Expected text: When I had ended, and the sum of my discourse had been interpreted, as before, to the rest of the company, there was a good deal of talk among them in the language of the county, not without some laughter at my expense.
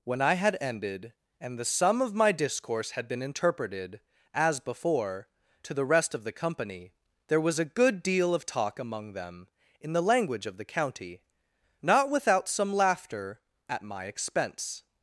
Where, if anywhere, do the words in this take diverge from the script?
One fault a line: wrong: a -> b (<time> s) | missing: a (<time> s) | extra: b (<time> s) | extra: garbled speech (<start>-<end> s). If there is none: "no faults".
no faults